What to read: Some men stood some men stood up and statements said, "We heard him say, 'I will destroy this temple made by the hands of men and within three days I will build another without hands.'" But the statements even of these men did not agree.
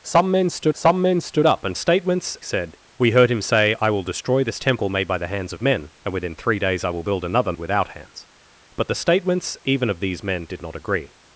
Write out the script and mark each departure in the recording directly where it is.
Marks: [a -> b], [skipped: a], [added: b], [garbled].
Some men stood some men stood up and statements said, "We heard him say, 'I will destroy this temple made by the hands of men and within three days I will build another without hands.'" But the statements even of these men did not agree.